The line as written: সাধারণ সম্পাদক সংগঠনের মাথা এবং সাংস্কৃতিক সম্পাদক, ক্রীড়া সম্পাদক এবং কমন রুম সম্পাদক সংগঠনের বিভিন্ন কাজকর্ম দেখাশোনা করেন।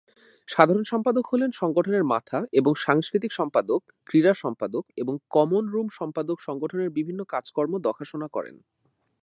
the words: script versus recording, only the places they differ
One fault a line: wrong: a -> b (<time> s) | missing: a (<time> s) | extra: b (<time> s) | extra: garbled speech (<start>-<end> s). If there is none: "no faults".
extra: হলেন (1.3 s)